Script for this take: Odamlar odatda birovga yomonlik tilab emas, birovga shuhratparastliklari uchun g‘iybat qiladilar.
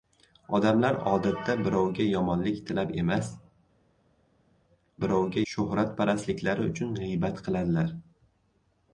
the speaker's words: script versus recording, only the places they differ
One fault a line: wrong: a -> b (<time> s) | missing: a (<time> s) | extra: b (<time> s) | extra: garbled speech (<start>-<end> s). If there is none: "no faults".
no faults